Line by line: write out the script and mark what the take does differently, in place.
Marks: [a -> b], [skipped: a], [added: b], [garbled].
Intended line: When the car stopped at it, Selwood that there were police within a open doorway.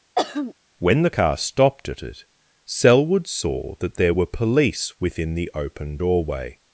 When the car stopped at it, Selwood [added: saw] that there were police within [a -> the] open doorway.